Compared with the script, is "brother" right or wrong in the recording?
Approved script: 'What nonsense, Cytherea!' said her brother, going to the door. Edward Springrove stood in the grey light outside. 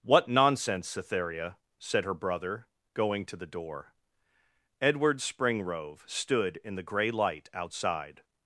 right